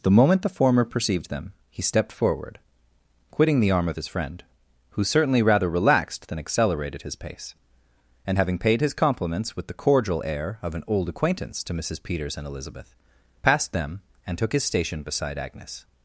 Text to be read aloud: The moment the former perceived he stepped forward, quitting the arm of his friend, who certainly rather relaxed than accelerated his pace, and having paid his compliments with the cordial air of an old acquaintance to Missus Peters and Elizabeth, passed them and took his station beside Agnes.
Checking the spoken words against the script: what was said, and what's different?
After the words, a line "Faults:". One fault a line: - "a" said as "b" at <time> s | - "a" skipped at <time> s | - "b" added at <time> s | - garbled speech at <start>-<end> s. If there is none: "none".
The moment the former perceived them, he stepped forward, quitting the arm of his friend, who certainly rather relaxed than accelerated his pace, and having paid his compliments with the cordial air of an old acquaintance to Missus Peters and Elizabeth, passed them and took his station beside Agnes.
Faults:
- "them" added at 1.3 s